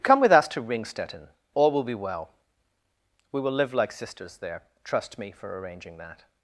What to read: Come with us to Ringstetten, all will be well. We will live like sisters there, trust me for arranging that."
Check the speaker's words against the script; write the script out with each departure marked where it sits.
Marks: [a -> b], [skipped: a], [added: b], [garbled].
Come with us to Ringstetten, all will be well. We will live like sisters there, trust me for arranging that."